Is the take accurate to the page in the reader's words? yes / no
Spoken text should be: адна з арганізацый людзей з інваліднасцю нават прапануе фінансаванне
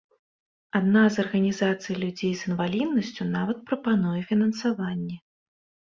yes